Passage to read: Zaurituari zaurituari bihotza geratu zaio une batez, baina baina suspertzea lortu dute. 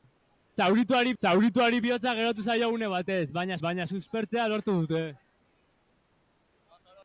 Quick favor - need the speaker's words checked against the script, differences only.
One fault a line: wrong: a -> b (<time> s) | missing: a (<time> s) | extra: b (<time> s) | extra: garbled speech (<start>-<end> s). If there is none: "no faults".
no faults